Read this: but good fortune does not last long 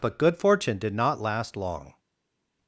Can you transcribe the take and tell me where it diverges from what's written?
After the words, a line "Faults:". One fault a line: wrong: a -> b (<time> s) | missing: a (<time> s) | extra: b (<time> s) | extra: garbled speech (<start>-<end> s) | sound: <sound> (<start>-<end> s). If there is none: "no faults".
but good fortune did not last long
Faults:
wrong: does -> did (0.8 s)